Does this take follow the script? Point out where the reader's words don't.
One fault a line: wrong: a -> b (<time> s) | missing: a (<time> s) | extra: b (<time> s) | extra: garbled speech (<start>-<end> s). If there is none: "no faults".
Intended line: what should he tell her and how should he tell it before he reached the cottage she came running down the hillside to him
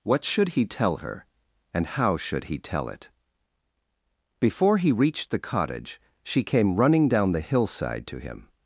no faults